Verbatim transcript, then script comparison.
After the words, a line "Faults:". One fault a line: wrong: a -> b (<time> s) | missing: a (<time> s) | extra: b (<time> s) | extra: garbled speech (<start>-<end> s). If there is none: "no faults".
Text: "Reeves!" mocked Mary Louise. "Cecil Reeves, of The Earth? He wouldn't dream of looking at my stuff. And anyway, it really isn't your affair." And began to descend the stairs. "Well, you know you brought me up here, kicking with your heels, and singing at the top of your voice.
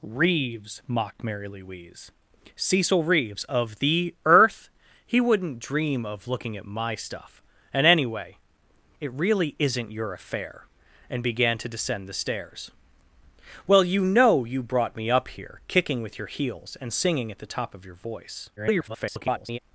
"Reeves!" mocked Mary Louise. "Cecil Reeves, of The Earth? He wouldn't dream of looking at my stuff. And anyway, it really isn't your affair." And began to descend the stairs. "Well, you know you brought me up here, kicking with your heels, and singing at the top of your voice. [garbled]
Faults:
extra: garbled speech (18.6-19.6 s)